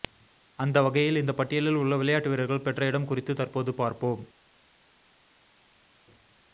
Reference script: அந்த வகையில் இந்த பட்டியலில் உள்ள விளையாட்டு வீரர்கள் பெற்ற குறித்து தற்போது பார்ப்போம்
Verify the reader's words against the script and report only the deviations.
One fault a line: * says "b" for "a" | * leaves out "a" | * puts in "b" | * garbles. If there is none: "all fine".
* puts in "இடம்"